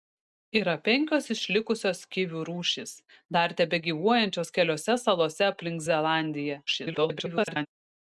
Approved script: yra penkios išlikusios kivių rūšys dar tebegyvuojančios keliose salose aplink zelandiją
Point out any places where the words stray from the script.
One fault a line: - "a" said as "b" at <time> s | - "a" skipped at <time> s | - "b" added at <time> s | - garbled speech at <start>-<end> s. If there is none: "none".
- garbled speech at 6.7-7.7 s